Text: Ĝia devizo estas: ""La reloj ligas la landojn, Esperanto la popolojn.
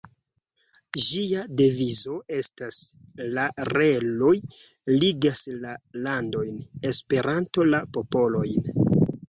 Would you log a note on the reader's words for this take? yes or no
no